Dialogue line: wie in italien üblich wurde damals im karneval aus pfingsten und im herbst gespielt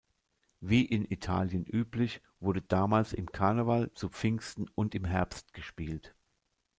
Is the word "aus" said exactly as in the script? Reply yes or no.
no